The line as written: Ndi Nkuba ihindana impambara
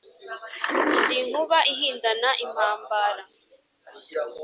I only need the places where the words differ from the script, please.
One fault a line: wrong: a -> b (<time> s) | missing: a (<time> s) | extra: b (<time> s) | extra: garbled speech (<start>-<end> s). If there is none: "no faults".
no faults